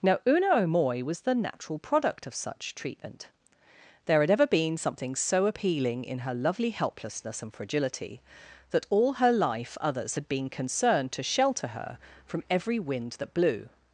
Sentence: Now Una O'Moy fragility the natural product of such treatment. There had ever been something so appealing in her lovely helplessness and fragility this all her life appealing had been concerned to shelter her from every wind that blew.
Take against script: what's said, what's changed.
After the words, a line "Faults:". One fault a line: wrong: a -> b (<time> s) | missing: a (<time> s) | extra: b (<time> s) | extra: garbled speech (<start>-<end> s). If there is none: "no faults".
Now Una O'Moy was the natural product of such treatment. There had ever been something so appealing in her lovely helplessness and fragility that all her life others had been concerned to shelter her from every wind that blew.
Faults:
wrong: fragility -> was (1.0 s)
wrong: this -> that (8.7 s)
wrong: appealing -> others (9.8 s)